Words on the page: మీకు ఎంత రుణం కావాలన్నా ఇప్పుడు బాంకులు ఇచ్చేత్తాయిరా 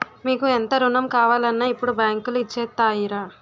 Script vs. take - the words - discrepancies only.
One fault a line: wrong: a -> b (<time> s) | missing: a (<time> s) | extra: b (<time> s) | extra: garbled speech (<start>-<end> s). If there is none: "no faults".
no faults